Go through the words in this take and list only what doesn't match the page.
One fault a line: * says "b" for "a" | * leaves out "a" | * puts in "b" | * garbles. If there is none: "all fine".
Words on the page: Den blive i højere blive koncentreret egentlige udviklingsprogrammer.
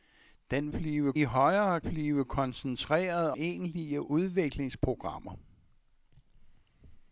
all fine